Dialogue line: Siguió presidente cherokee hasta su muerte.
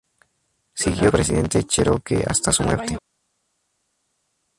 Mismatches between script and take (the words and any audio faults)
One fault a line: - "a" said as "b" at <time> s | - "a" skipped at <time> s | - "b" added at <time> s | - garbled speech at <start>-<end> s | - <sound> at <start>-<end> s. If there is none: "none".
none